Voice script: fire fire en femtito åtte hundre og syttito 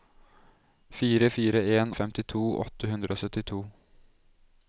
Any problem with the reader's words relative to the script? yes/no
no